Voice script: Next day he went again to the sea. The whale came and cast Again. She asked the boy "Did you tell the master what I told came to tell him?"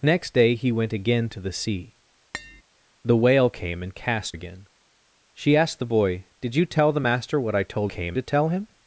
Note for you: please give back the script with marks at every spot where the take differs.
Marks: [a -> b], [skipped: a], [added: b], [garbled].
Next day he went again to the sea. The whale came and cast Again. She asked the boy "Did you tell the master what I told came to tell him?"